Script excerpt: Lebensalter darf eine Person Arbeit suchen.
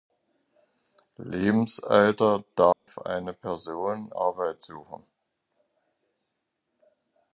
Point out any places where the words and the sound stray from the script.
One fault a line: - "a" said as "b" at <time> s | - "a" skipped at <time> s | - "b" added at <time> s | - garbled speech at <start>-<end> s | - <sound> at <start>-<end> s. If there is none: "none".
- dropout at 2.7-2.9 s